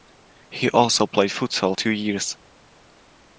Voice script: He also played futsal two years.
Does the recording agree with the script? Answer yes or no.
yes